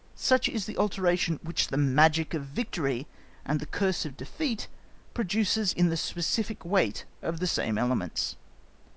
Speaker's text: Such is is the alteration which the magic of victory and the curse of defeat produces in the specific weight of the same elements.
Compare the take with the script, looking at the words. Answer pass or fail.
fail